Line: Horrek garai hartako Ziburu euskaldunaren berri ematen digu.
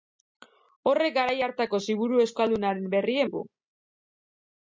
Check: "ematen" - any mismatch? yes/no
yes